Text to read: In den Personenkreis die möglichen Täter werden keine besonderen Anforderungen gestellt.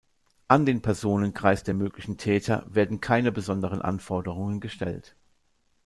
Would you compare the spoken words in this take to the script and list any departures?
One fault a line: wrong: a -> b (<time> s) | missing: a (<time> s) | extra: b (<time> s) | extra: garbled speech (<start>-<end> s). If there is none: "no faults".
wrong: In -> An (0.5 s)
wrong: die -> der (1.6 s)